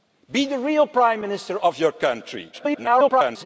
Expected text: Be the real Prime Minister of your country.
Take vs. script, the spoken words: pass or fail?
fail